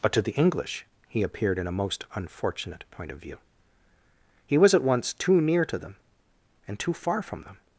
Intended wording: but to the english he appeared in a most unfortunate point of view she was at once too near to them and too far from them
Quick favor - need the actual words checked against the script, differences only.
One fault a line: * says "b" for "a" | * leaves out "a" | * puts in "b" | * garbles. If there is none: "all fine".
* says "he" for "she"